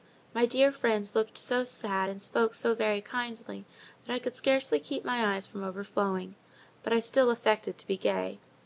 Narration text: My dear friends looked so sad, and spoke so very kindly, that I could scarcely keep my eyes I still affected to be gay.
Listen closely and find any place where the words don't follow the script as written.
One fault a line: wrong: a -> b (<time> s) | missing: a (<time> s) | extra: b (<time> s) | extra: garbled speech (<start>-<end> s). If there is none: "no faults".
extra: from overflowing but (5.5 s)